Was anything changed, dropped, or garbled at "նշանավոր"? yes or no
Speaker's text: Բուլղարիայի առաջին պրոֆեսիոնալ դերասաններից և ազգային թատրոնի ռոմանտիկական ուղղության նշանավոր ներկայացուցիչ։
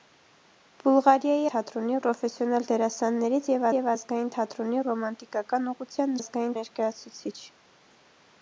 yes